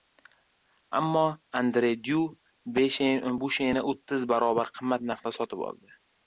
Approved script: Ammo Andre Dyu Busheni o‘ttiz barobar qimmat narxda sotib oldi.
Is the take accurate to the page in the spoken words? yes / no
yes